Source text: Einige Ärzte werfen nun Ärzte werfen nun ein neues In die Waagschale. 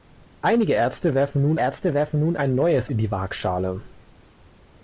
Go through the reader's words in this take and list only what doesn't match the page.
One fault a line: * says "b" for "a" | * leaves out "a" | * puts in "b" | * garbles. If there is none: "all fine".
all fine